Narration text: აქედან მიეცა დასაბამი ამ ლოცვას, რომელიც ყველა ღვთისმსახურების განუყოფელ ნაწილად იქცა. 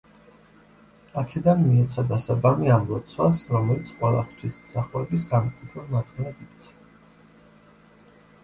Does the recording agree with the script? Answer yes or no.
yes